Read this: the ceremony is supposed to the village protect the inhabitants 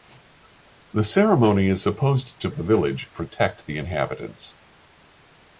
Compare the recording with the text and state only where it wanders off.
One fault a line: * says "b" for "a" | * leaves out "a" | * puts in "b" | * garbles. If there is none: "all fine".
all fine